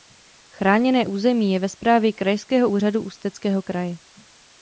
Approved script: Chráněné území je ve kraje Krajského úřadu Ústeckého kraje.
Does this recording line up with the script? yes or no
no